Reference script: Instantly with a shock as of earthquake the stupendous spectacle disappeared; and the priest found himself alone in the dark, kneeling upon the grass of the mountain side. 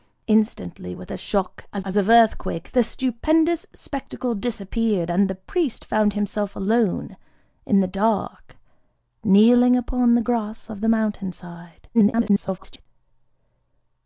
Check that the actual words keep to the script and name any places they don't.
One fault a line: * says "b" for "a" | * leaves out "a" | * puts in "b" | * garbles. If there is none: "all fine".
* puts in "as"
* garbles